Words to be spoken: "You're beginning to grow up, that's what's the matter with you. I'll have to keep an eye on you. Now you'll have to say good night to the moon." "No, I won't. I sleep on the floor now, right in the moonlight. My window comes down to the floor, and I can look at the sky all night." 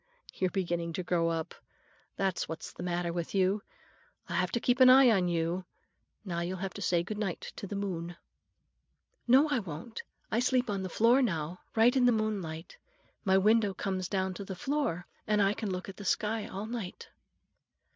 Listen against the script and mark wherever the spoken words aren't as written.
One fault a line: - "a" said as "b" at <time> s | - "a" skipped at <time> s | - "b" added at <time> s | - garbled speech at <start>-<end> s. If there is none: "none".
none